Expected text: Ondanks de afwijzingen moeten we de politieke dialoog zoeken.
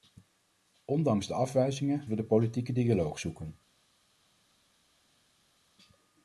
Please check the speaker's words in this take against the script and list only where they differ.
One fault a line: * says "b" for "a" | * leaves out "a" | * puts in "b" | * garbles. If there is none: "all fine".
* leaves out "moeten"